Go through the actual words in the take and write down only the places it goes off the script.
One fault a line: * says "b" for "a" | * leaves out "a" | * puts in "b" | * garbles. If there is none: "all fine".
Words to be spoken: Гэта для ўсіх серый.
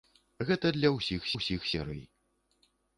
* puts in "ўсіх"